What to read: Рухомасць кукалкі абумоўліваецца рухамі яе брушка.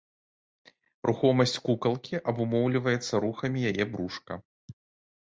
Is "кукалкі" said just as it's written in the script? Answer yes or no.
yes